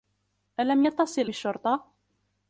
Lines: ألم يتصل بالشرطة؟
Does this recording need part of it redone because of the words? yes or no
no